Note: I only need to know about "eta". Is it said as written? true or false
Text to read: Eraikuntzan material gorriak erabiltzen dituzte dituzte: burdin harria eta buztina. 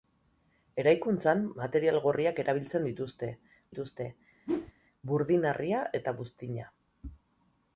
true